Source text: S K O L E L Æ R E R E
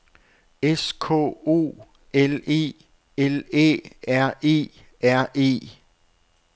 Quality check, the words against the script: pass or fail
pass